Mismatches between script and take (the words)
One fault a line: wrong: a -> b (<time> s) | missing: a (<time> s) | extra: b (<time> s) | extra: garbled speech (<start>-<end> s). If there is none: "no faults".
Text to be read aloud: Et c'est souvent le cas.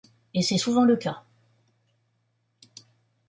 no faults